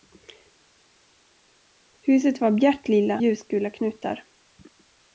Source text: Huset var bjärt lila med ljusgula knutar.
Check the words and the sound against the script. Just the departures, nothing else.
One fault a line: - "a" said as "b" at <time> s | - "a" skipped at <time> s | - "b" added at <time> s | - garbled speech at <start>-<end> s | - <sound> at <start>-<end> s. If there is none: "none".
- "med" skipped at 3.2 s